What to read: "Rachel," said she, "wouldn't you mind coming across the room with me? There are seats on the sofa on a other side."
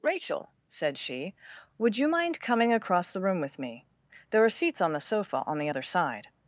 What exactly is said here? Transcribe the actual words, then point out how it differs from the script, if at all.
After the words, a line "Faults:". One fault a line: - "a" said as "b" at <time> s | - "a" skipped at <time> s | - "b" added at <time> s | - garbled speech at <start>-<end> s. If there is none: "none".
"Rachel," said she, "would you mind coming across the room with me? There are seats on the sofa on the other side."
Faults:
- "wouldn't" said as "would" at 1.8 s
- "a" said as "the" at 5.6 s